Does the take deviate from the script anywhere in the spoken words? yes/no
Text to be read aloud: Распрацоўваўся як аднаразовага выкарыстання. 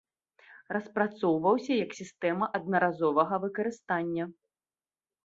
yes